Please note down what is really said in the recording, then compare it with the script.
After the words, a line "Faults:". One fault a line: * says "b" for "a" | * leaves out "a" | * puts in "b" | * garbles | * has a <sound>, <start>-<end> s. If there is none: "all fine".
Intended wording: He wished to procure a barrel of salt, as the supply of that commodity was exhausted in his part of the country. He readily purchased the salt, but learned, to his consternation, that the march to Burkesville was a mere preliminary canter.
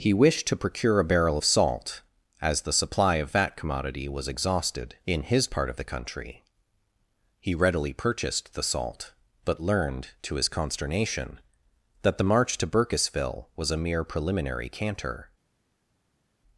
He wished to procure a barrel of salt, as the supply of that commodity was exhausted in his part of the country. He readily purchased the salt, but learned, to his consternation, that the march to Burkesville was a mere preliminary canter.
Faults:
all fine